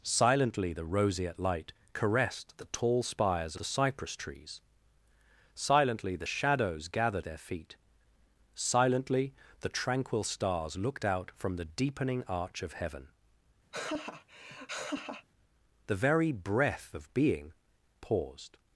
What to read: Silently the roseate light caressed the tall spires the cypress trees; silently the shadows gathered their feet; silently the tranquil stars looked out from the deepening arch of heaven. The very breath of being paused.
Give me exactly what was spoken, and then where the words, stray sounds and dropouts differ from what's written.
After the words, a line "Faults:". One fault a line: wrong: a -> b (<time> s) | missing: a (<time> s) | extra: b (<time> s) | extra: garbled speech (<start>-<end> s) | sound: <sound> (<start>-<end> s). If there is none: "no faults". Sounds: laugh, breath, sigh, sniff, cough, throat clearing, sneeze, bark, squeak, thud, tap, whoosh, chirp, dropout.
Silently the roseate light caressed the tall spires the cypress trees; silently the shadows gathered their feet; silently the tranquil stars looked out from the deepening arch of heaven. The very breath of being paused.
Faults:
sound: laugh (13.7-15.3 s)